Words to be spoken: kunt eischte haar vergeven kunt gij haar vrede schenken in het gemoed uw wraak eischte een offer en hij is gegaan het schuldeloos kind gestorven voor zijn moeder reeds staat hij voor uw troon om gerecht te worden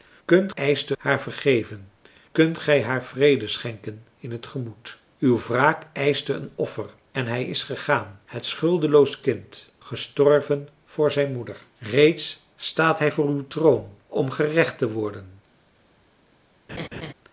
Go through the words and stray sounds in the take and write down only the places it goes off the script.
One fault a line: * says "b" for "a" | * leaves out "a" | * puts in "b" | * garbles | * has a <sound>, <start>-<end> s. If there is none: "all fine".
* has a laugh, 16.7-17.1 s